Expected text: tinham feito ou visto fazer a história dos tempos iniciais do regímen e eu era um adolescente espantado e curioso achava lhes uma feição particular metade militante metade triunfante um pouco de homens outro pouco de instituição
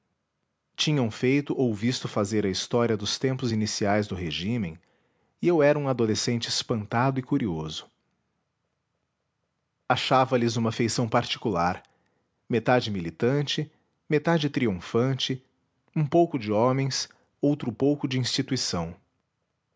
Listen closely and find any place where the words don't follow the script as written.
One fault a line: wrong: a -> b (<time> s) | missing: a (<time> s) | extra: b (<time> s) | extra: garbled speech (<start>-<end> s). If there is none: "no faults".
no faults